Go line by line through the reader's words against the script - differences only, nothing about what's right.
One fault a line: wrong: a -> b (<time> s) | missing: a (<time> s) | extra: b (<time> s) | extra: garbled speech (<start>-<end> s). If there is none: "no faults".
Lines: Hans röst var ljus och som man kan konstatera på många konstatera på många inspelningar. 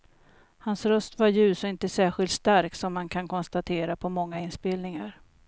extra: inte särskilt stark (1.7 s)
missing: konstatera på många (4.4 s)